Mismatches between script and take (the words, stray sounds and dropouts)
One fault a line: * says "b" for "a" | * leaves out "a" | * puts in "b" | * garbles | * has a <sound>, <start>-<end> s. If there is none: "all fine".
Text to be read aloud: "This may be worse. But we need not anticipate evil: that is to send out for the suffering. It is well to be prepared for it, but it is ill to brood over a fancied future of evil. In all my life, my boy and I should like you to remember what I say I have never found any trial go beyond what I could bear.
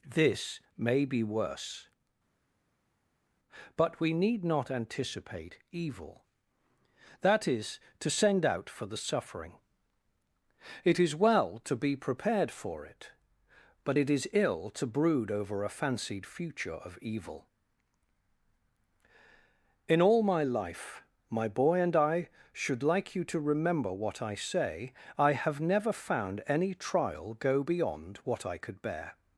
all fine